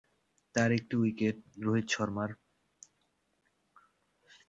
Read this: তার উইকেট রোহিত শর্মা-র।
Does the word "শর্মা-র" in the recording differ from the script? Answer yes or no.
no